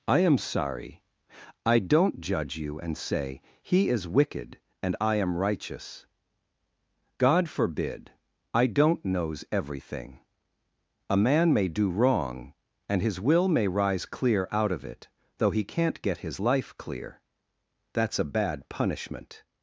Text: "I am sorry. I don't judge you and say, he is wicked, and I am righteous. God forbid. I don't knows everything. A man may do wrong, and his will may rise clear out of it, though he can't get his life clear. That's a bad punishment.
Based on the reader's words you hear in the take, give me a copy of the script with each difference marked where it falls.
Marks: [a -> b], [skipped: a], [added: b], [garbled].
"I am sorry. I don't judge you and say, he is wicked, and I am righteous. God forbid. I don't knows everything. A man may do wrong, and his will may rise clear out of it, though he can't get his life clear. That's a bad punishment.